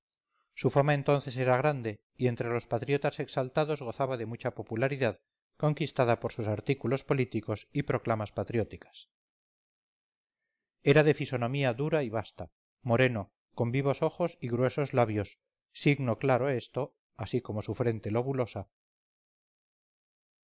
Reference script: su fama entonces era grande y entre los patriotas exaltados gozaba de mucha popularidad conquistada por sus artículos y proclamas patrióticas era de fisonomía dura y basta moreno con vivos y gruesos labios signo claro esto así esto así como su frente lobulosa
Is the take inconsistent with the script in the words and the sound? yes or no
yes